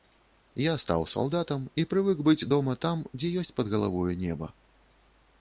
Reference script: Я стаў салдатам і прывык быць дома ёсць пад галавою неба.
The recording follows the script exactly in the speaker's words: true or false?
false